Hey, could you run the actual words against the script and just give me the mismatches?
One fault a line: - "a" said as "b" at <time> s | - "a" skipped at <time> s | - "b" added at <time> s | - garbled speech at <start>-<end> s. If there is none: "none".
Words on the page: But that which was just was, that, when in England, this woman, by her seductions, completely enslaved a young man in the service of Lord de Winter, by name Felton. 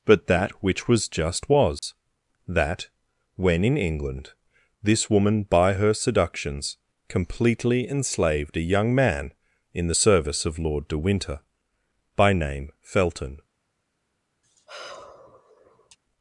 none